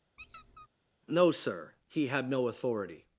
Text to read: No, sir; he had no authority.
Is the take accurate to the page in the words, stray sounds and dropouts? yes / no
no